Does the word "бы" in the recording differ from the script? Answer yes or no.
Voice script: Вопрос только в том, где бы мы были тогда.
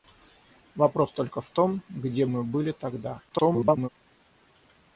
yes